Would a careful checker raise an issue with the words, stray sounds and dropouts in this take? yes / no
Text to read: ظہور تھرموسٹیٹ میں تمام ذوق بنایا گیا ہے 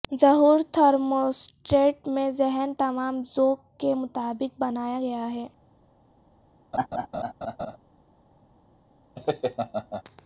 yes